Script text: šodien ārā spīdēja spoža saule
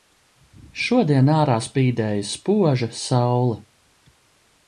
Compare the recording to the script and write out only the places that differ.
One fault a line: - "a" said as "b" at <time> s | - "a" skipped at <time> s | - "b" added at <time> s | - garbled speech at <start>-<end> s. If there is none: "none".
none